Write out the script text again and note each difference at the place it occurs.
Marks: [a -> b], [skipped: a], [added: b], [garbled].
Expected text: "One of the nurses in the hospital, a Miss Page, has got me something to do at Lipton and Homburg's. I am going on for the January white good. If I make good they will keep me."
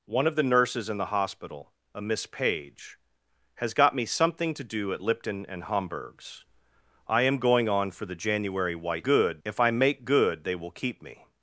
"One of the nurses in the hospital, a Miss Page, has got me something to do at Lipton and Homburg's. I am going on for the January white good. If I make good they will keep me."